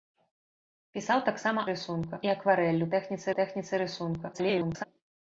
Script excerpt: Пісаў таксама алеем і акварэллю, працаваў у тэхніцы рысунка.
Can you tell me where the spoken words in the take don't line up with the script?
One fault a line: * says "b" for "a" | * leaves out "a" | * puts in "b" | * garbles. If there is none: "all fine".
* says "рысунка" for "алеем"
* says "тэхніцы" for "працаваў"
* garbles